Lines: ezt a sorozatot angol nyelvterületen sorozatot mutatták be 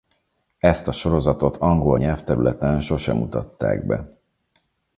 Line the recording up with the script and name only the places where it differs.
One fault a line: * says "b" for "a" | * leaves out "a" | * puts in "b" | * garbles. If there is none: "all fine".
* says "sose" for "sorozatot"